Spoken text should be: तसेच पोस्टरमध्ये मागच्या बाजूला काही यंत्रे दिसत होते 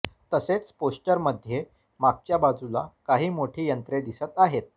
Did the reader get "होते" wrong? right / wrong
wrong